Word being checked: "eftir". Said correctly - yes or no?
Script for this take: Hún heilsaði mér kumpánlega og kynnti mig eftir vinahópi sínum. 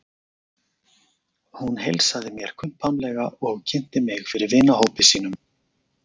no